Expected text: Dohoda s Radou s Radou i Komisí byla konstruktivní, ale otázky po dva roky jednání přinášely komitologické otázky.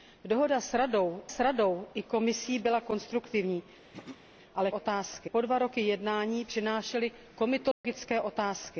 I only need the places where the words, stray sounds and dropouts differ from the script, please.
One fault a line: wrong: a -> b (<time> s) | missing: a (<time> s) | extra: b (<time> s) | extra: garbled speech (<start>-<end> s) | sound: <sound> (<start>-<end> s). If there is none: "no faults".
sound: throat clearing (3.9-4.2 s)
sound: dropout (7.7-7.8 s)